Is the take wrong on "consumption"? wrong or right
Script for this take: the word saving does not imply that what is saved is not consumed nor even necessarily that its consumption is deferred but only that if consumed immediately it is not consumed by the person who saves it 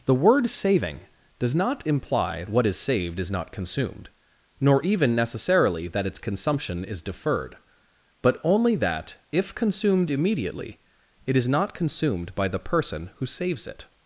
right